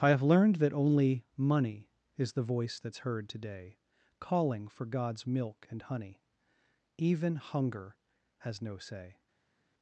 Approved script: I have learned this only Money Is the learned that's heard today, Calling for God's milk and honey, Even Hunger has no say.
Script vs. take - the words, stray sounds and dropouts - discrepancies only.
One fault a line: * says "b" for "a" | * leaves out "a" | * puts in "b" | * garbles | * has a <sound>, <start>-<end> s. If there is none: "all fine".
* says "that" for "this"
* says "voice" for "learned"